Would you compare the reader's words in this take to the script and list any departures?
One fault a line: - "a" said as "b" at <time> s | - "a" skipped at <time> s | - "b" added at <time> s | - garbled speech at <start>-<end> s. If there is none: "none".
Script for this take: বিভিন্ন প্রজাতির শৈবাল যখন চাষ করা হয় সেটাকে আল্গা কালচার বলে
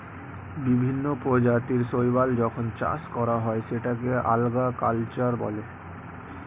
none